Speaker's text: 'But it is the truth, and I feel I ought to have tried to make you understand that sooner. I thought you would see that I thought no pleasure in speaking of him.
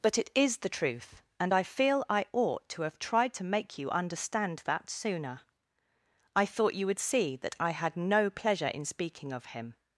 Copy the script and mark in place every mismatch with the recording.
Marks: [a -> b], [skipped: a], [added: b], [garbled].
'But it is the truth, and I feel I ought to have tried to make you understand that sooner. I thought you would see that I [thought -> had] no pleasure in speaking of him.